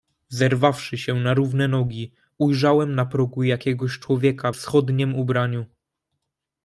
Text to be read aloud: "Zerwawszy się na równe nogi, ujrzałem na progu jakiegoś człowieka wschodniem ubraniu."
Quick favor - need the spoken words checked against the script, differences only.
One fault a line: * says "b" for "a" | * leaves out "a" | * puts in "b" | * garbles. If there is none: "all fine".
all fine